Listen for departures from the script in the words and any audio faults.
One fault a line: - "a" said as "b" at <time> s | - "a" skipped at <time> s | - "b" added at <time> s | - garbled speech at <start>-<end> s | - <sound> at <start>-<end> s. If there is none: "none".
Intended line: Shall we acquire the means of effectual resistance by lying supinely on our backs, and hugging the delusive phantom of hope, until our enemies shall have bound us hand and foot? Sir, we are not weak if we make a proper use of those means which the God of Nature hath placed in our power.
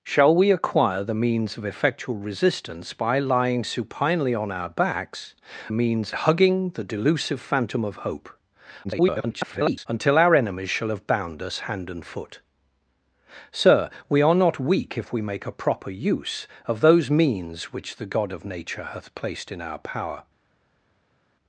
- "and" said as "means" at 5.7 s
- garbled speech at 8.8-9.9 s